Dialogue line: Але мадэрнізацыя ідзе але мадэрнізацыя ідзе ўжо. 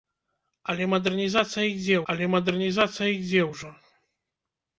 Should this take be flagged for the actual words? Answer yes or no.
no